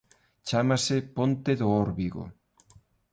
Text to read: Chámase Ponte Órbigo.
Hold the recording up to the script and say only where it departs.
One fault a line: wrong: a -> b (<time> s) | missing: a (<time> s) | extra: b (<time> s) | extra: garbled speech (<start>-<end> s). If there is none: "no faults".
extra: do (1.6 s)